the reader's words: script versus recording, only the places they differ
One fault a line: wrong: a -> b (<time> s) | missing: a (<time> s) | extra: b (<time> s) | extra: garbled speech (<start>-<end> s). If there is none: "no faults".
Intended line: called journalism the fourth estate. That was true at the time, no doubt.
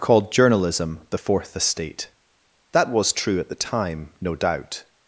no faults